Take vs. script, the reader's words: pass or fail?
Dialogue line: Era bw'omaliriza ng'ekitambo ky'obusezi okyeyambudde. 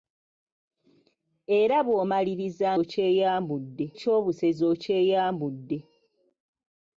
fail